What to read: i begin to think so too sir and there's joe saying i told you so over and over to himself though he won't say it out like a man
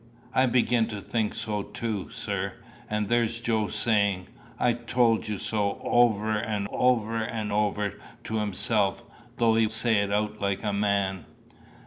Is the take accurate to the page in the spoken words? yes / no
no